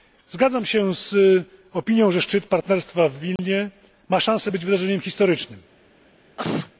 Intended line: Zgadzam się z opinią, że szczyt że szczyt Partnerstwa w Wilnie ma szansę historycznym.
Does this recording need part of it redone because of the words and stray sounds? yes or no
yes